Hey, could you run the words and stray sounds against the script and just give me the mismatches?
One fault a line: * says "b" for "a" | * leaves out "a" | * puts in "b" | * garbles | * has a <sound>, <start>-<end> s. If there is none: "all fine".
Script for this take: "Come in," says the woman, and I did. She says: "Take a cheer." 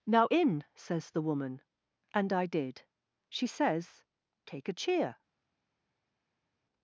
* says "Now" for "Come"